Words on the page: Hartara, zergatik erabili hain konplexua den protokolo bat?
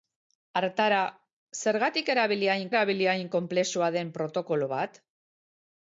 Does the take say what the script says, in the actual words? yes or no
no